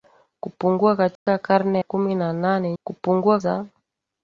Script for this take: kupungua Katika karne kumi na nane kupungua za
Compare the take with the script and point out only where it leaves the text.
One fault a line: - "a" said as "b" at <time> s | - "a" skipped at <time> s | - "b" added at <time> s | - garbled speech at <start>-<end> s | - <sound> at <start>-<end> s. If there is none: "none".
- dropout at 1.2-1.3 s